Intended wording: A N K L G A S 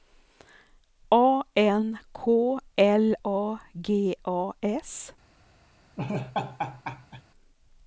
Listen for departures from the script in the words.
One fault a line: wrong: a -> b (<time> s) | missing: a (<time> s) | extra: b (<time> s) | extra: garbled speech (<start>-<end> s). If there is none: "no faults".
extra: A (3.2 s)